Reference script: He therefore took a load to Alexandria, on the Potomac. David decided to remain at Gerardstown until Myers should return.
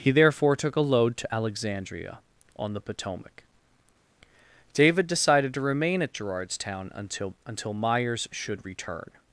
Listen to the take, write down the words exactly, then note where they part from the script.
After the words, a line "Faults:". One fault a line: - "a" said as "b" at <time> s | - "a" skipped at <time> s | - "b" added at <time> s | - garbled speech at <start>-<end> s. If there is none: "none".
He therefore took a load to Alexandria, on the Potomac. David decided to remain at Gerardstown until until Myers should return.
Faults:
- "until" added at 7.5 s